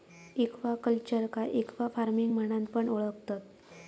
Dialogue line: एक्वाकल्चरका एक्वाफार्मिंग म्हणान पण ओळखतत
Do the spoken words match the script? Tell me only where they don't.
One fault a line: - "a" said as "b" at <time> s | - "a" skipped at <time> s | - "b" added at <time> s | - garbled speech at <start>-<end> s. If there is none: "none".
none